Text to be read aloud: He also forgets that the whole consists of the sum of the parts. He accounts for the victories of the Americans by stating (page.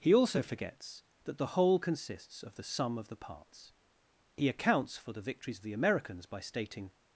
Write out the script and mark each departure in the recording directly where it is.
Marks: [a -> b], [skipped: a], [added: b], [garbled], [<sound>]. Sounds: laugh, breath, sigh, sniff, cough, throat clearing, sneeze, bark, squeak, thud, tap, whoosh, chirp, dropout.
He also forgets that the whole consists of the sum of the parts. He accounts for the victories of the Americans by stating [skipped: (page.]